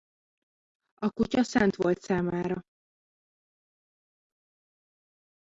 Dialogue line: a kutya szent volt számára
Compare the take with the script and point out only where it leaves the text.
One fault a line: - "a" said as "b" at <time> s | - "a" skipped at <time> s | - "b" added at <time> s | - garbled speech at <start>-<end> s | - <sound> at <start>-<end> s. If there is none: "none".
none